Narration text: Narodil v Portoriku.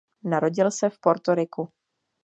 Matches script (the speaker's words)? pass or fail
fail